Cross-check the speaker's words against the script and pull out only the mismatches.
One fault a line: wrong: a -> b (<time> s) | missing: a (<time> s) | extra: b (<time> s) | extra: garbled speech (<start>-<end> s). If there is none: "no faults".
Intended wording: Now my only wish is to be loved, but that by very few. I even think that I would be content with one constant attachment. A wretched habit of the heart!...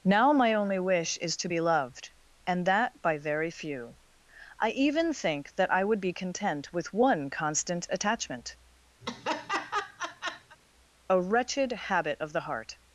wrong: but -> and (2.5 s)